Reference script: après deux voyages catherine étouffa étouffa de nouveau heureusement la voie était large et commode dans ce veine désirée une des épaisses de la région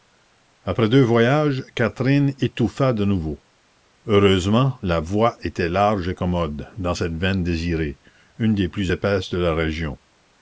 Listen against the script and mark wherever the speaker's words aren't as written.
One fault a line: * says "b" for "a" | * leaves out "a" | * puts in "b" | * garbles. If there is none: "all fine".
* leaves out "étouffa"
* says "cette" for "ce"
* puts in "plus"